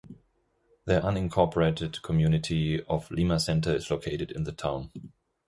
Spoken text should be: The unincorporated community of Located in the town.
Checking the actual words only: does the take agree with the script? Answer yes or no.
no